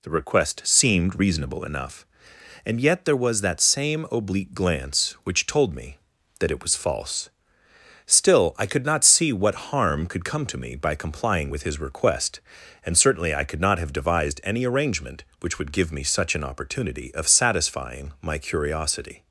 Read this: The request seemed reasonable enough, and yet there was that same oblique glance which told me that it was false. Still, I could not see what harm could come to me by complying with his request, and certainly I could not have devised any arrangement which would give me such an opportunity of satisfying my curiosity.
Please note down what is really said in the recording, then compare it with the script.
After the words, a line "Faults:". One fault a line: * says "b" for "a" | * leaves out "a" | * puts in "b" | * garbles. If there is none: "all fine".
The request seemed reasonable enough, and yet there was that same oblique glance which told me that it was false. Still, I could not see what harm could come to me by complying with his request, and certainly I could not have devised any arrangement which would give me such an opportunity of satisfying my curiosity.
Faults:
all fine